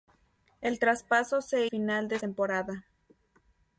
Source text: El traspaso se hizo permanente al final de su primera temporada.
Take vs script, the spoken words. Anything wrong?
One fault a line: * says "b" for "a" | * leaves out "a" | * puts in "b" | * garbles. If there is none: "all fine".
* leaves out "hizo permanente al"
* leaves out "su primera"